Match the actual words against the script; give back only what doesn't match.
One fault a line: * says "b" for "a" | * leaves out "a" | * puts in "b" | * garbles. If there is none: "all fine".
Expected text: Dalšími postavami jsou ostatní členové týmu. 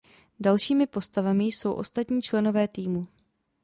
all fine